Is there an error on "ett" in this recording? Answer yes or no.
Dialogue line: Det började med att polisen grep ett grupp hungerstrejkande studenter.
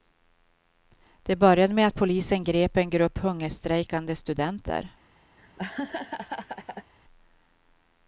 yes